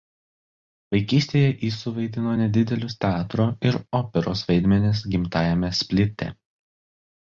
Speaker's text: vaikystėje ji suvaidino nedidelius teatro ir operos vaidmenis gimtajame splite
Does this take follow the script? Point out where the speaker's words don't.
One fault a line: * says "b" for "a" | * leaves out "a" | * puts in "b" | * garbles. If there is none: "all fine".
all fine